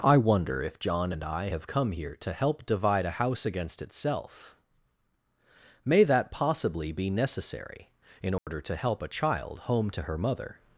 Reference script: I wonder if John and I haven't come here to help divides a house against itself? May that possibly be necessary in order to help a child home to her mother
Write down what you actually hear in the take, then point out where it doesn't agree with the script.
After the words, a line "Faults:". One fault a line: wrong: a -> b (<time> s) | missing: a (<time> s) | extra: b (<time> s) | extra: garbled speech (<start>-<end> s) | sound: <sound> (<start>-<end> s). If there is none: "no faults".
I wonder if John and I have come here to help divide a house against itself? May that possibly be necessary in order to help a child home to her mother
Faults:
wrong: haven't -> have (1.5 s)
wrong: divides -> divide (2.7 s)
sound: dropout (8.4-8.5 s)